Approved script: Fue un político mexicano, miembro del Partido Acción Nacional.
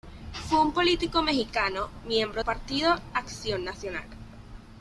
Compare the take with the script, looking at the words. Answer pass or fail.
fail